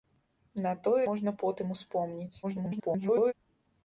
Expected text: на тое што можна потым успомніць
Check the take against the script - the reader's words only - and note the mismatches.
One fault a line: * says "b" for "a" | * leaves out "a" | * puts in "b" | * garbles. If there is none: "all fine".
* leaves out "што"
* garbles